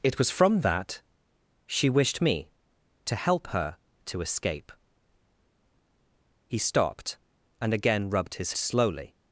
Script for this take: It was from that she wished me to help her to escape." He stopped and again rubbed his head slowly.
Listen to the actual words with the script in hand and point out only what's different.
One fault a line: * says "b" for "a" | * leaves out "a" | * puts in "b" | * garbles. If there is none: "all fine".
* leaves out "head"